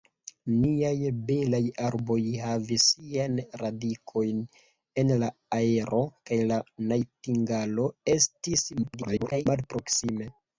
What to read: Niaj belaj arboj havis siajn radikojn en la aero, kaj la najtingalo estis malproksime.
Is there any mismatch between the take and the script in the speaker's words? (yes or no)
yes